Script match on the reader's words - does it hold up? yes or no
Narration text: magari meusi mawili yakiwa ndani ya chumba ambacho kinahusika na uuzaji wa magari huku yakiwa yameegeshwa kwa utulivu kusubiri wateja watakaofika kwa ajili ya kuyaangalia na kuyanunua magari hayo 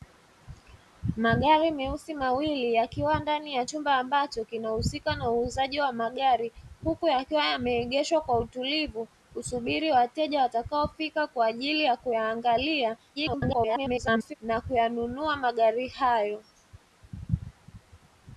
no